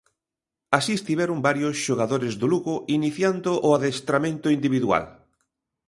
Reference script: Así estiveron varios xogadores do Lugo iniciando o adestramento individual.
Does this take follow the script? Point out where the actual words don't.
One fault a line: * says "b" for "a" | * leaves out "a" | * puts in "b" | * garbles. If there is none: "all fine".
all fine